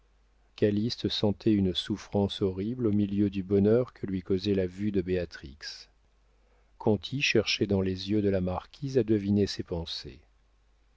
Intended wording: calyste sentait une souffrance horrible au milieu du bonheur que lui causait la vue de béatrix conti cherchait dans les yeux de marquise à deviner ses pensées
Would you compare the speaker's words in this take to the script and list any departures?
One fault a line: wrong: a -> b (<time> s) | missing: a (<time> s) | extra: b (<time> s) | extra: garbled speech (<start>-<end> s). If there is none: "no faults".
extra: la (8.3 s)